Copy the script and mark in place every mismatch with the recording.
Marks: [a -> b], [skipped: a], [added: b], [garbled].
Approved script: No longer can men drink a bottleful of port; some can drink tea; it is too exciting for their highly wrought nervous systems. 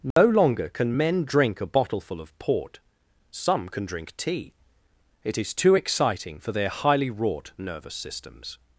No longer can men drink a bottleful of port; some can drink tea; it is too exciting for their highly wrought nervous systems.